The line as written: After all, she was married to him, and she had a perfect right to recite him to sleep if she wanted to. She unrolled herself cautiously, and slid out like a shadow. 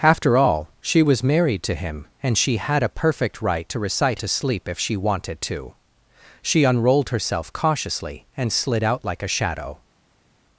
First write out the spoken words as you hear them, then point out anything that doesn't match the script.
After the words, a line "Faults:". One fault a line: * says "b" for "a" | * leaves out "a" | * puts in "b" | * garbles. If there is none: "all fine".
After all, she was married to him, and she had a perfect right to recite to sleep if she wanted to. She unrolled herself cautiously, and slid out like a shadow.
Faults:
* leaves out "him"